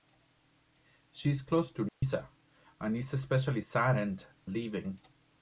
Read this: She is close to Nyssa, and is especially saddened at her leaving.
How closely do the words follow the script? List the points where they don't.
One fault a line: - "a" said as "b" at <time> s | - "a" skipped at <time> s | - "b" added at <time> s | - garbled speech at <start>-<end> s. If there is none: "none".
- "at her" skipped at 4.2 s